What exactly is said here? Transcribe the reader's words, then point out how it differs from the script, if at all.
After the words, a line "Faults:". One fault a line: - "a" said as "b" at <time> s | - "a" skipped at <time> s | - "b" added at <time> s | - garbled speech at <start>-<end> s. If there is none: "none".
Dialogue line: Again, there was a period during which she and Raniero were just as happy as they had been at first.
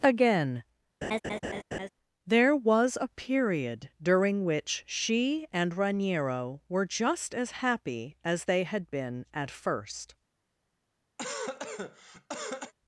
Again, there was a period during which she and Raniero were just as happy as they had been at first.
Faults:
none